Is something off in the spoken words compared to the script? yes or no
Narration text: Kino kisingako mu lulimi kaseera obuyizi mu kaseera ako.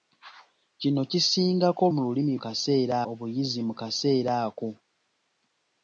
no